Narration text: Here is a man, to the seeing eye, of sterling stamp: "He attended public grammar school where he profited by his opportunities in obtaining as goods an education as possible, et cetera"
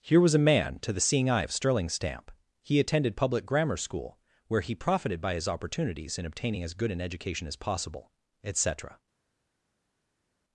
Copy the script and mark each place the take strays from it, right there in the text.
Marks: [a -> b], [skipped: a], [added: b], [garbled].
Here [is -> was] a man, to the seeing eye, of sterling stamp: "He attended public grammar school where he profited by his opportunities in obtaining as [goods -> good] an education as possible, et cetera"